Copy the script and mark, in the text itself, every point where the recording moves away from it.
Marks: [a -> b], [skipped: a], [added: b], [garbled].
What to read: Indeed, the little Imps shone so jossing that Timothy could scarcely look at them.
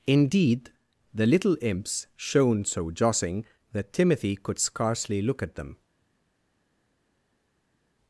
Indeed, the little Imps shone so jossing that Timothy could scarcely look at them.